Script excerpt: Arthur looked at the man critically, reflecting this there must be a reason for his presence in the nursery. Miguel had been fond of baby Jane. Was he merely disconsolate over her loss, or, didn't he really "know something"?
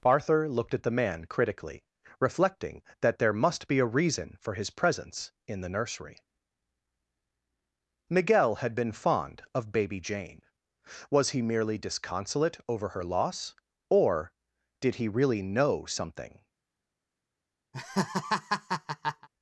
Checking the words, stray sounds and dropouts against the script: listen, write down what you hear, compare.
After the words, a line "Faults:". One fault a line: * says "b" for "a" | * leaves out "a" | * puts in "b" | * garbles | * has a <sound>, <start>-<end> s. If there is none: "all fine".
Arthur looked at the man critically, reflecting that there must be a reason for his presence in the nursery. Miguel had been fond of baby Jane. Was he merely disconsolate over her loss, or, did he really "know something"?
Faults:
* says "that" for "this"
* says "did" for "didn't"
* has a laugh, 17.7-19.3 s